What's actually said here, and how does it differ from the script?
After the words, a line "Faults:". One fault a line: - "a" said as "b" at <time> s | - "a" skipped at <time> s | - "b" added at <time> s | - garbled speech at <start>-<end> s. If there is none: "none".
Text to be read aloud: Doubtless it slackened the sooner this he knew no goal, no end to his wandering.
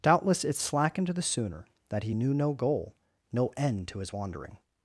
Doubtless it slackened the sooner that he knew no goal, no end to his wandering.
Faults:
- "this" said as "that" at 1.9 s